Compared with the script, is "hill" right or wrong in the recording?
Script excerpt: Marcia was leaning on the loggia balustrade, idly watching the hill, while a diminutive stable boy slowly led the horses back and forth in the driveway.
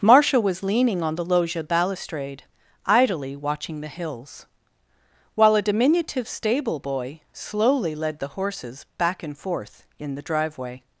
wrong